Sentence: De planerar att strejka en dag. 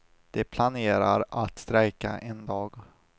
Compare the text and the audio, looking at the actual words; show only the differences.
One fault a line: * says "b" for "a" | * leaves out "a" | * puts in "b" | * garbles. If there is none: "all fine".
all fine